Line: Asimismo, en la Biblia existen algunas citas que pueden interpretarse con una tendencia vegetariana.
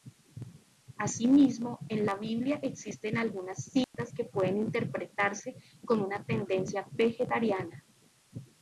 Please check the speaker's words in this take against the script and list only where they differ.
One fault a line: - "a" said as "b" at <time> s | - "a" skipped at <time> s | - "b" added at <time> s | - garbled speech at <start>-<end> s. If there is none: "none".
none